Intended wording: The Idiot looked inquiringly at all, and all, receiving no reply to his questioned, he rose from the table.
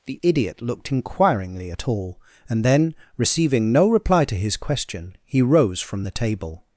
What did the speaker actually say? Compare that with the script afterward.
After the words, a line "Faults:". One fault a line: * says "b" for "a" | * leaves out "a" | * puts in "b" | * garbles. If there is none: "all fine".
The Idiot looked inquiringly at all, and then, receiving no reply to his question, he rose from the table.
Faults:
* says "then" for "all"
* says "question" for "questioned"